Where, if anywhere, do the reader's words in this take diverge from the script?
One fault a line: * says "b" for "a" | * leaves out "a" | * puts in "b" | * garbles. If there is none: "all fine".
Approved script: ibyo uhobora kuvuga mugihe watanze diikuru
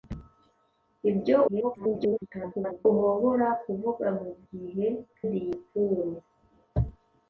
* garbles
* leaves out "watanze"